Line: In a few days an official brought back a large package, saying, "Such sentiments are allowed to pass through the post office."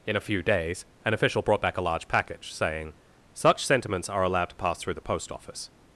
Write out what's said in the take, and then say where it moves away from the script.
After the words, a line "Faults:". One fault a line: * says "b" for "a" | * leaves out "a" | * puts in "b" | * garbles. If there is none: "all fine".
In a few days an official brought back a large package, saying, "Such sentiments are allowed to pass through the post office."
Faults:
all fine